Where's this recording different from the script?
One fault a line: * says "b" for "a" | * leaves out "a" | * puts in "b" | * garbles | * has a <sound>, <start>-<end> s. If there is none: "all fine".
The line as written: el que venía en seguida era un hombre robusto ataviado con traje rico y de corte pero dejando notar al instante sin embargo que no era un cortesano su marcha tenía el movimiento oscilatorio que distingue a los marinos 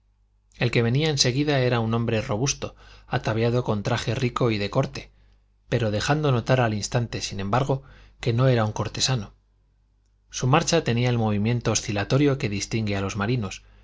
all fine